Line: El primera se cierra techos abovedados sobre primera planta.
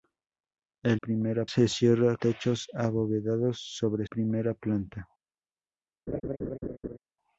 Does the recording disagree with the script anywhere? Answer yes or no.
no